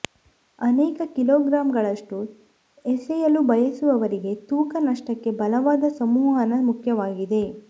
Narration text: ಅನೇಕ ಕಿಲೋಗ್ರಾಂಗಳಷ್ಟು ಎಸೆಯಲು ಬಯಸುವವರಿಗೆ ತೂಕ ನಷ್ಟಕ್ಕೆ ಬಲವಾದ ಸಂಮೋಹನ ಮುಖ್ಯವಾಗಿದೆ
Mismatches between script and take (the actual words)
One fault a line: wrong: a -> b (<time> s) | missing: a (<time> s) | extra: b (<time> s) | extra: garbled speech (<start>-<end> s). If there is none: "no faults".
no faults